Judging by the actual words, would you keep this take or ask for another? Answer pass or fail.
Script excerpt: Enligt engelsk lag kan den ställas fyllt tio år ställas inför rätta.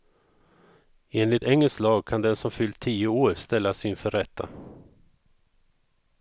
fail